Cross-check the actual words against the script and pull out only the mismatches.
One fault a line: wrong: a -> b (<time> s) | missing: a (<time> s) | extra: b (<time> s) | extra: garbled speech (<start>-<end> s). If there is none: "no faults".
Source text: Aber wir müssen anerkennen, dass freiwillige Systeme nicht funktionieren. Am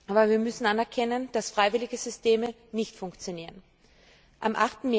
no faults